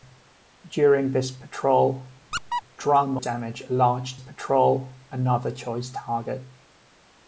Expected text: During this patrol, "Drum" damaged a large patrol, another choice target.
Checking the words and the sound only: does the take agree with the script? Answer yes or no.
no